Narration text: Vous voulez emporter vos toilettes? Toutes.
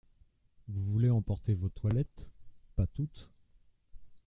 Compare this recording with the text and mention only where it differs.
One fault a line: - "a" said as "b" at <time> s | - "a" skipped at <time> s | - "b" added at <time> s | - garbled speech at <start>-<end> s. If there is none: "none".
- "Pas" added at 2.8 s